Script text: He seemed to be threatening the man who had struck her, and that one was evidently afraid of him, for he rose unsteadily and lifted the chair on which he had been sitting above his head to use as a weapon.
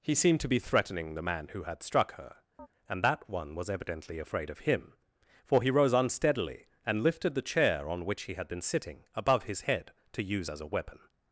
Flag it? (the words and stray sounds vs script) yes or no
yes